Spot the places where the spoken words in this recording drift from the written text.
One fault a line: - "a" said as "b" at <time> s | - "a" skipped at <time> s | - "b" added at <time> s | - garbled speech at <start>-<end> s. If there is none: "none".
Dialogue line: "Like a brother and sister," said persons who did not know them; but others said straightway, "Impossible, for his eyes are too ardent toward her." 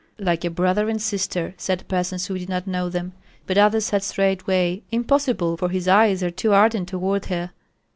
none